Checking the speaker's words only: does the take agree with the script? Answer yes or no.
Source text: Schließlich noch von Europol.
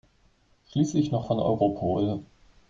yes